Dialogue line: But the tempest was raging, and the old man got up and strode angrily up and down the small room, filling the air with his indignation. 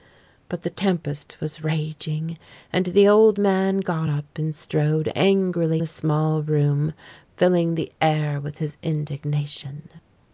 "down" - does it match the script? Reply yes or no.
no